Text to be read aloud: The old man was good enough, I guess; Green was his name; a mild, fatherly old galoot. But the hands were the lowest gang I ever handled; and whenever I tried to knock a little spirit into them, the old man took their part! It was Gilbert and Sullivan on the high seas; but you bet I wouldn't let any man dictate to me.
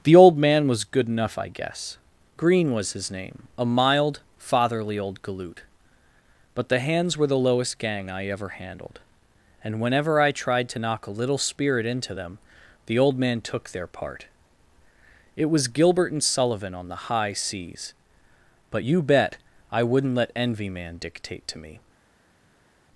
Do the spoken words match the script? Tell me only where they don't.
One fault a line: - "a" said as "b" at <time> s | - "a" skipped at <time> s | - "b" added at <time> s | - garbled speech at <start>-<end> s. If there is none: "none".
- "any" said as "envy" at 20.3 s